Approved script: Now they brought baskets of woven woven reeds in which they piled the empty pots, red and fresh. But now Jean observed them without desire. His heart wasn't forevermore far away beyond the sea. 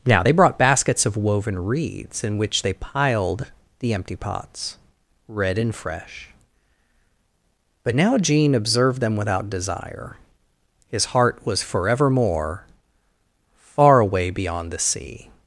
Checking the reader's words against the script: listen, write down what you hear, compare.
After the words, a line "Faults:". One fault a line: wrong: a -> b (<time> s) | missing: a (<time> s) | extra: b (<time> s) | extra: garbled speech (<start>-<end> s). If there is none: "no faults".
Now they brought baskets of woven reeds in which they piled the empty pots, red and fresh. But now Jean observed them without desire. His heart was forevermore far away beyond the sea.
Faults:
missing: woven (1.6 s)
wrong: wasn't -> was (11.4 s)